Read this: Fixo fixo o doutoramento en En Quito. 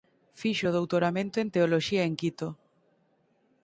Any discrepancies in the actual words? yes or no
yes